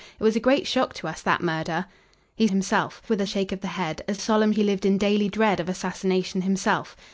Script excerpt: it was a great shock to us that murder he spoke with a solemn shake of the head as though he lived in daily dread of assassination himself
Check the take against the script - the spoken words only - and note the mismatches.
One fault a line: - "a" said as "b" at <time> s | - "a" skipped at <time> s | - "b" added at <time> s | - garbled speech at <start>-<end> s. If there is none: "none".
- "spoke" said as "himself" at 2.5 s
- "solemn" skipped at 3.3 s
- "though" said as "solemn" at 4.2 s